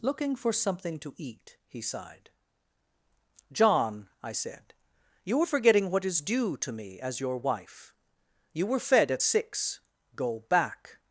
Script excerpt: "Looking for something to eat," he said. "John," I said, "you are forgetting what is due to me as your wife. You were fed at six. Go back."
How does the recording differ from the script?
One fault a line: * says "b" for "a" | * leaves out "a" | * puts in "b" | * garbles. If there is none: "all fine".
* says "sighed" for "said"